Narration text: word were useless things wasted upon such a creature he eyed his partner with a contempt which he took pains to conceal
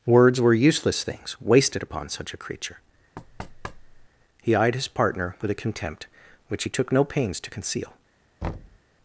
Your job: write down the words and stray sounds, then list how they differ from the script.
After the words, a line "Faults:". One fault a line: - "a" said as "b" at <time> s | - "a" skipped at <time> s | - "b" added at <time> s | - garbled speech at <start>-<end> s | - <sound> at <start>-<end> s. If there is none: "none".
words were useless things wasted upon such a creature he eyed his partner with a contempt which he took no pains to conceal
Faults:
- "word" said as "words" at 0.1 s
- thud at 3.2-4.1 s
- "no" added at 6.9 s
- thud at 8.4-8.8 s